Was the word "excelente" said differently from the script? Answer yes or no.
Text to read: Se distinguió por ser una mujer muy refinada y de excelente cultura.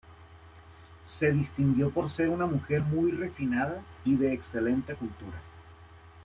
no